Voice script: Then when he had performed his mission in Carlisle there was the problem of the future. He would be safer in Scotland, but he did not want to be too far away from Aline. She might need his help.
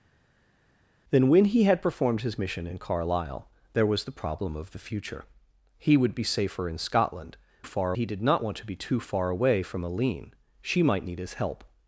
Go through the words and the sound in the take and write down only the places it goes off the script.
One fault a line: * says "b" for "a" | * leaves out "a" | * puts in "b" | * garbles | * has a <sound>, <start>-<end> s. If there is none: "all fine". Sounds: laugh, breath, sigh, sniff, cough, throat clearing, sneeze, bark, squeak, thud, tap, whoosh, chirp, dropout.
* says "far" for "but"